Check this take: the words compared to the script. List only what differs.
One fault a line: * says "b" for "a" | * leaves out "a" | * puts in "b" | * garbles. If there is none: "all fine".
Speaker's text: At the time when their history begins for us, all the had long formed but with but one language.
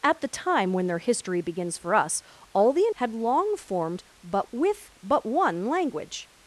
all fine